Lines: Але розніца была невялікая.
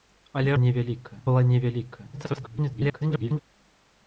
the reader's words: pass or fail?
fail